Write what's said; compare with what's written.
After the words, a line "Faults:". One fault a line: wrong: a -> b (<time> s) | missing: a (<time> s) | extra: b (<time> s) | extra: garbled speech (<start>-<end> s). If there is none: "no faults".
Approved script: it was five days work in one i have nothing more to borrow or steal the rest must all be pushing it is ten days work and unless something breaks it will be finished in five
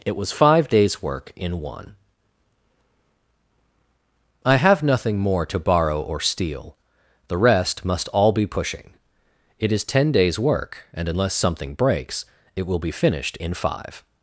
it was five days work in one i have nothing more to borrow or steal the rest must all be pushing it is ten days work and unless something breaks it will be finished in five
Faults:
no faults